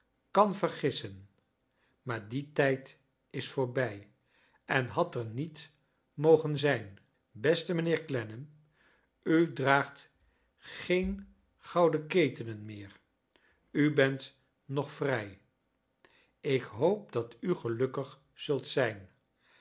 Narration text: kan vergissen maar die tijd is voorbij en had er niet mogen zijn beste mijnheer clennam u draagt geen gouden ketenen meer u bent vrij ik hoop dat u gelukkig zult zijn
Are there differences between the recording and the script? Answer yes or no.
yes